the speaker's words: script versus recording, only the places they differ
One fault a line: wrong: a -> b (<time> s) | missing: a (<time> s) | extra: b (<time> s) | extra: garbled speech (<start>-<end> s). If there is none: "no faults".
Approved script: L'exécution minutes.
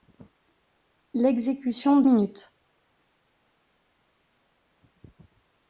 no faults